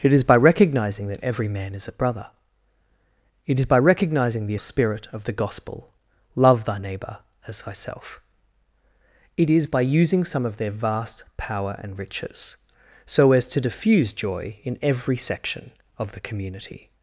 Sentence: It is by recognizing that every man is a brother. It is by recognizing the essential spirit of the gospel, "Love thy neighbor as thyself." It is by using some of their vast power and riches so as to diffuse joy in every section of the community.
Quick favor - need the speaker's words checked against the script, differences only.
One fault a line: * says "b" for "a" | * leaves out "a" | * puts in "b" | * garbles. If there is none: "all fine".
* leaves out "essential"